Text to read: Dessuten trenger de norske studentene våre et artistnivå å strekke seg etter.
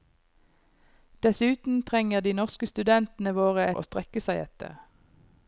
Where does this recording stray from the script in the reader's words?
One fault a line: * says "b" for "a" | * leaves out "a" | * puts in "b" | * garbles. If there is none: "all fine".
* leaves out "et artistnivå"